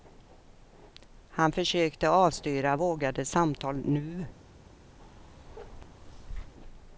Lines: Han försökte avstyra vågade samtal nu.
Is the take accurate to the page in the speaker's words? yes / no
yes